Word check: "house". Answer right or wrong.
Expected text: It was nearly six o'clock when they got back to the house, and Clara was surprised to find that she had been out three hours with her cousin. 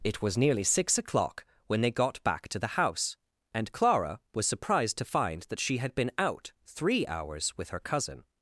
right